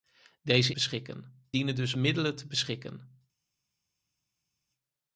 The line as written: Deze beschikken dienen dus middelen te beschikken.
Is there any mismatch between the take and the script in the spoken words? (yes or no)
no